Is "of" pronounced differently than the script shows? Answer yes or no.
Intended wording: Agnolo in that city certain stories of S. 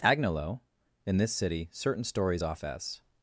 yes